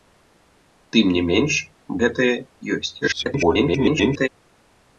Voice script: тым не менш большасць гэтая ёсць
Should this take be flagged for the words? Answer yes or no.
yes